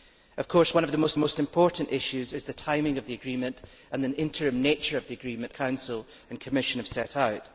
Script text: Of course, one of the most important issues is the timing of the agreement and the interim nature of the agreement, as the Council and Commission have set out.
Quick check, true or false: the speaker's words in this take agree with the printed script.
false